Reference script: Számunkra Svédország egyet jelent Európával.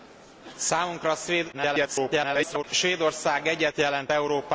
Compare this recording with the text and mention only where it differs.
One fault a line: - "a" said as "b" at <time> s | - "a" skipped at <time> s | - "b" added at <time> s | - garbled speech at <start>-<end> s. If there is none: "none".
- garbled speech at 1.5-2.6 s